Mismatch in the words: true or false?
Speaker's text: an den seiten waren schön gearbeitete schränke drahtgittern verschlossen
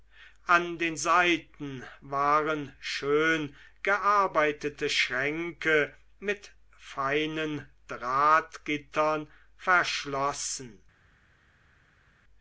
true